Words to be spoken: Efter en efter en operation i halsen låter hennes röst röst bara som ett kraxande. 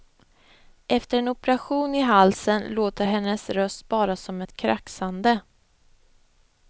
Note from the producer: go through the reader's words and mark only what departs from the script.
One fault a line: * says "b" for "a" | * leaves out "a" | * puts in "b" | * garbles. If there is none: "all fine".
* leaves out "efter en"
* leaves out "röst"